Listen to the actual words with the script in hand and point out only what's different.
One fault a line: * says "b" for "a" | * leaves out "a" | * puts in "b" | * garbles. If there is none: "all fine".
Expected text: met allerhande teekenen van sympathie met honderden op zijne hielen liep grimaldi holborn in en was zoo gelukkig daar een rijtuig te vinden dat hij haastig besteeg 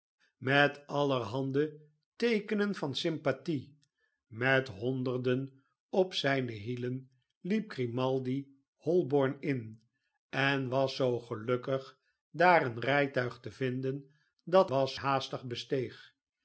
* says "was" for "hij"